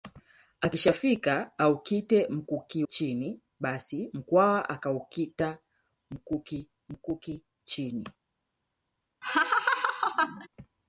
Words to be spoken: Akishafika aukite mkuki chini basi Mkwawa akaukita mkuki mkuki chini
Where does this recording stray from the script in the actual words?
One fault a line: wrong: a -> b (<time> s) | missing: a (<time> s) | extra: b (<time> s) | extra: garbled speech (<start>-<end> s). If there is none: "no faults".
no faults